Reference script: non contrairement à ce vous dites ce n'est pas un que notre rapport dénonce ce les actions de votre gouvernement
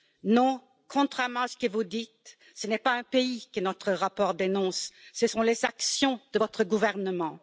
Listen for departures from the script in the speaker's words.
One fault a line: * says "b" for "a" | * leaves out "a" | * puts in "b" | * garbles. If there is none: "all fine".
* puts in "que"
* puts in "pays"
* puts in "sont"